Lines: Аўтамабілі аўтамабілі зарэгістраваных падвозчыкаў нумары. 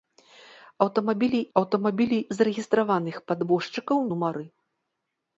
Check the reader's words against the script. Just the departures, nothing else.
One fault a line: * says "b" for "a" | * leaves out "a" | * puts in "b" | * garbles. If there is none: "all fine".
all fine